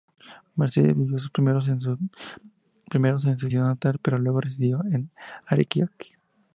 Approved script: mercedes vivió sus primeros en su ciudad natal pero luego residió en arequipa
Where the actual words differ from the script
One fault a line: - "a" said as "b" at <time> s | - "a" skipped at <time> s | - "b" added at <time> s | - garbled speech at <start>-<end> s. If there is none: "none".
none